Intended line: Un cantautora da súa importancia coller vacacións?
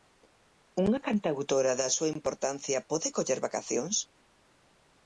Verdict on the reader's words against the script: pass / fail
fail